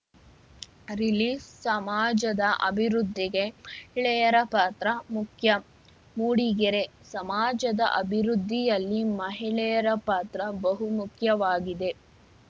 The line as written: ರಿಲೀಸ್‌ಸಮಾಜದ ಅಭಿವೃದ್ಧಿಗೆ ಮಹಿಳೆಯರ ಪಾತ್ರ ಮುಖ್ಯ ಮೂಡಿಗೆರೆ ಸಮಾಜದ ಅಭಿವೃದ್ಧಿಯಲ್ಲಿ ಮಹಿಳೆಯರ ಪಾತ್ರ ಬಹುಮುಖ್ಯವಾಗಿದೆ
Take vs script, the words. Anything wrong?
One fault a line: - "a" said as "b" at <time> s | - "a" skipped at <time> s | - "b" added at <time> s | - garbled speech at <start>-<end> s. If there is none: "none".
none